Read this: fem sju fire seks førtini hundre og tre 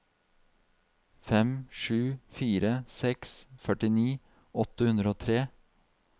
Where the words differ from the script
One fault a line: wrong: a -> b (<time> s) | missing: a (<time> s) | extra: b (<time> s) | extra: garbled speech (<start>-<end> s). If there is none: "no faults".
extra: åtte (4.7 s)